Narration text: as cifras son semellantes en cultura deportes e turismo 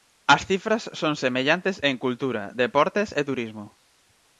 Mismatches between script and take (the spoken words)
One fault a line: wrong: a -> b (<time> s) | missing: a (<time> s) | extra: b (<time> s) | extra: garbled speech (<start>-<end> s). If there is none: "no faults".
no faults